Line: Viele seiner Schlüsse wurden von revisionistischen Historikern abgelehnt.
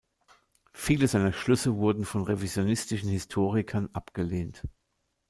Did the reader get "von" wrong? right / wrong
right